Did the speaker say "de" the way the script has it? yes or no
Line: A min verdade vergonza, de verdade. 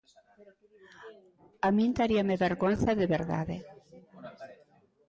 yes